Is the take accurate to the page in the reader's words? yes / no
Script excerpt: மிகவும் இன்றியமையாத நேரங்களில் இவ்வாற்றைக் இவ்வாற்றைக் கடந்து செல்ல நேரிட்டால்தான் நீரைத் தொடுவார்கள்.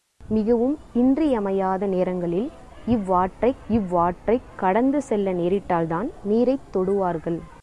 yes